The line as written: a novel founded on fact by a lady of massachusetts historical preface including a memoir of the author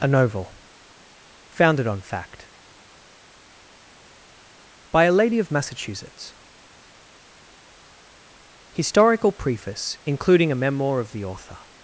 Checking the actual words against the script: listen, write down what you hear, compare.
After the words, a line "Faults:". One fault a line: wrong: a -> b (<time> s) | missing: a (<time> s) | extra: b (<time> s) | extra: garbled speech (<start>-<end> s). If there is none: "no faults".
a novel founded on fact by a lady of massachusetts historical preface including a memoir of the author
Faults:
no faults